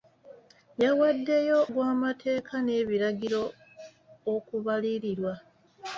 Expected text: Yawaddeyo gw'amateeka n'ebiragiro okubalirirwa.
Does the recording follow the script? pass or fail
pass